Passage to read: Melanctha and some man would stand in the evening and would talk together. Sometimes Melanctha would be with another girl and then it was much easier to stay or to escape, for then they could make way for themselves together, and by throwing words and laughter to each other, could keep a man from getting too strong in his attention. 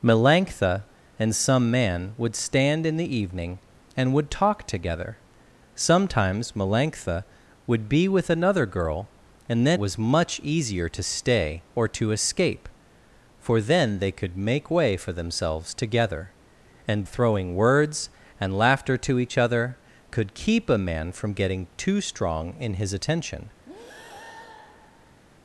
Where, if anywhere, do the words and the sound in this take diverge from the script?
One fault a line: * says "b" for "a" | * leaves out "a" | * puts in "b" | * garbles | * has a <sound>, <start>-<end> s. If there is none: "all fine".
* leaves out "it"
* leaves out "by"
* has a breath, 23.7-25.2 s